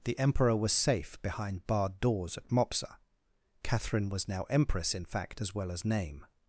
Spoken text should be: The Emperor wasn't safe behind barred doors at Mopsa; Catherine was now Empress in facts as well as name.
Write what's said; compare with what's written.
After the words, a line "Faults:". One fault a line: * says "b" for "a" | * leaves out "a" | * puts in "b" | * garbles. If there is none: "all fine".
The Emperor was safe behind barred doors at Mopsa; Catherine was now Empress in fact as well as name.
Faults:
* says "was" for "wasn't"
* says "fact" for "facts"